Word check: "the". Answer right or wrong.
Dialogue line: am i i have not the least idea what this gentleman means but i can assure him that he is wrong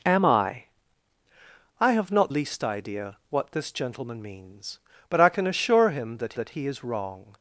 wrong